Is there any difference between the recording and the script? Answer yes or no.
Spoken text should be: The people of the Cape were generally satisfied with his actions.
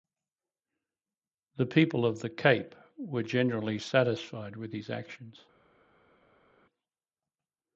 no